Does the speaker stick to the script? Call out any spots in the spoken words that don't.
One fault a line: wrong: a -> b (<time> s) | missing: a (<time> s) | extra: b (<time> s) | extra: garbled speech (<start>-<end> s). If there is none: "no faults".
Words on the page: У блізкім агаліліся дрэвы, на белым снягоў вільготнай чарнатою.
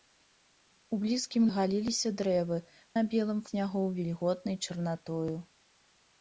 no faults